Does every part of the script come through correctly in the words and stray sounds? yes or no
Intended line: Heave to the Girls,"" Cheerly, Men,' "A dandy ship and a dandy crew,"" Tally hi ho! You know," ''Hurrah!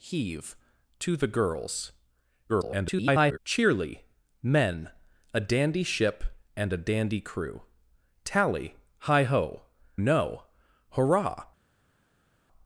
no